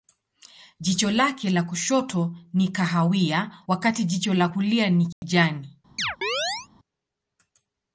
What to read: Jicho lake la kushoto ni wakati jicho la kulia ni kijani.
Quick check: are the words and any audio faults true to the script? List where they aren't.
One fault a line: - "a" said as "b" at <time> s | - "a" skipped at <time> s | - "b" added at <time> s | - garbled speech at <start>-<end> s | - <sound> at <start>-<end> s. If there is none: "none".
- "kahawia" added at 2.7 s
- dropout at 5.1-5.2 s
- chirp at 6.0-6.7 s